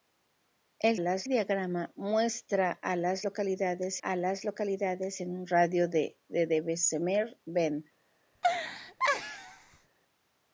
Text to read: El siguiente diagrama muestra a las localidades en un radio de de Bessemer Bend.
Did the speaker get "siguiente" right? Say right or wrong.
wrong